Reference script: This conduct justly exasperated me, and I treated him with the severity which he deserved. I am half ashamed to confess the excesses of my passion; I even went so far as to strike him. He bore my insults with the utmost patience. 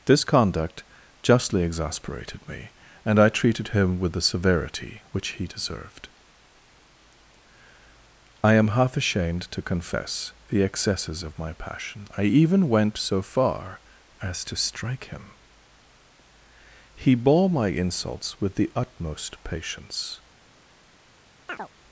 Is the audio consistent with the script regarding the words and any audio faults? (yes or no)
no